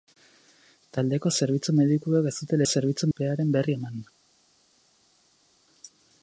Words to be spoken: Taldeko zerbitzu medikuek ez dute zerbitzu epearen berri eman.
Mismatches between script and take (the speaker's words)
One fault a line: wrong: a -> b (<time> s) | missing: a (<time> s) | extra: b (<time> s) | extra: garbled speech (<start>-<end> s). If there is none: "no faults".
no faults